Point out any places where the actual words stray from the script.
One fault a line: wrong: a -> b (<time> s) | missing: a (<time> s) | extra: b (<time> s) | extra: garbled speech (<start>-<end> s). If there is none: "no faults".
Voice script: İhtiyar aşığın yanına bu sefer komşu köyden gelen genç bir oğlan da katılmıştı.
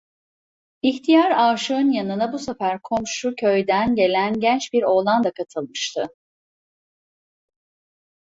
no faults